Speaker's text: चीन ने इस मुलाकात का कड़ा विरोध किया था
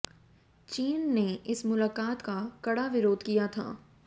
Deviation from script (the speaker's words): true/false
false